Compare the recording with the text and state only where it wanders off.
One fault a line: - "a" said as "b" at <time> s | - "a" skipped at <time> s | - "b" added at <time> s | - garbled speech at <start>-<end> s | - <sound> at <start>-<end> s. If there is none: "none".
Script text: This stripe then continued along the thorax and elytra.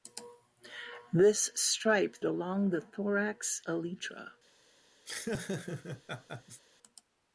- "then continued" skipped at 2.1 s
- "and" skipped at 3.6 s
- laugh at 5.1-6.6 s